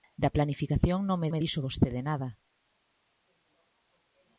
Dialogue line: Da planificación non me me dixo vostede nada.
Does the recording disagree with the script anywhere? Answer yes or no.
no